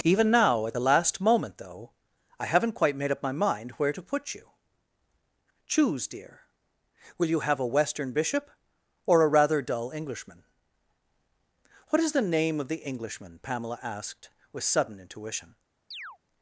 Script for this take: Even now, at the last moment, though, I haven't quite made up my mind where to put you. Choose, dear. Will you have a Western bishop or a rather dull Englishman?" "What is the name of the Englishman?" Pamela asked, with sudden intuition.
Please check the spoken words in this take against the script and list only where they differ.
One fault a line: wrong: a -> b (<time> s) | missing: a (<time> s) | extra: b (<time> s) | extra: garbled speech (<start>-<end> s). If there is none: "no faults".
no faults